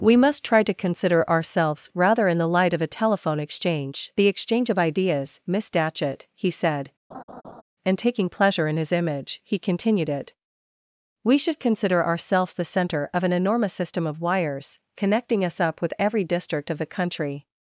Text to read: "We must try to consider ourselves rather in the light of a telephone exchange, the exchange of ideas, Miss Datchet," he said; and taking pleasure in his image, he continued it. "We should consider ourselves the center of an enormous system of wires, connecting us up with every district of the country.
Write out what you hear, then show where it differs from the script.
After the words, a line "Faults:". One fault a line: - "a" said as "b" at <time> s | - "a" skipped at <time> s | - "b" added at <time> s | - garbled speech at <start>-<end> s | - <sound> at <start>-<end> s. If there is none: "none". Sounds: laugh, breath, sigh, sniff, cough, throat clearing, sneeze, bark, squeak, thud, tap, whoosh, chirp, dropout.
"We must try to consider ourselves rather in the light of a telephone exchange, the exchange of ideas, Miss Datchet," he said; and taking pleasure in his image, he continued it. "We should consider ourselves the center of an enormous system of wires, connecting us up with every district of the country.
Faults:
- laugh at 7.1-7.6 s